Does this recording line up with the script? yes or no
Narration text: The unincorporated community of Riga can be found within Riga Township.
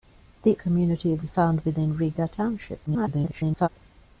no